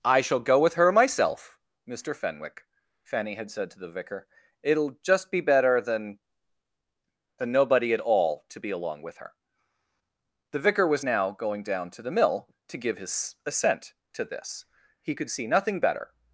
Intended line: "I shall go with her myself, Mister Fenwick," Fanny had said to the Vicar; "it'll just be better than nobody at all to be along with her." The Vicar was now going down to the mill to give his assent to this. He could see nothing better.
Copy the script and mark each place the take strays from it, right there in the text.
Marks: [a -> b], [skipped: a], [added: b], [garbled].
"I shall go with her myself, Mister Fenwick," Fanny had said to the Vicar; "it'll just be better than [added: than] nobody at all to be along with her." The Vicar was now going down to the mill to give his assent to this. He could see nothing better.